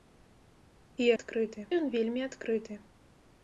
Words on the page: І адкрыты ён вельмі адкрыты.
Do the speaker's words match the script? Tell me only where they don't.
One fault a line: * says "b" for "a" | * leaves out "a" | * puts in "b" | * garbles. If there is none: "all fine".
all fine